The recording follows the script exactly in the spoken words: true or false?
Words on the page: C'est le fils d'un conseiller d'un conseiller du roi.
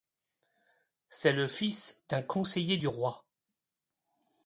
false